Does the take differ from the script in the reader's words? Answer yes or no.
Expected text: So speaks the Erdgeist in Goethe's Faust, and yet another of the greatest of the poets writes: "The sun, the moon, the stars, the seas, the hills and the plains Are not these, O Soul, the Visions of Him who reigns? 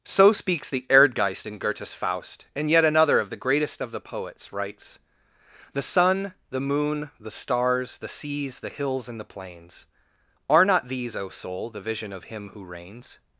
yes